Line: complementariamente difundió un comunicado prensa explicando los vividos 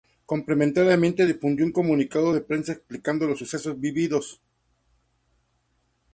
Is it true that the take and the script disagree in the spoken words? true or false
true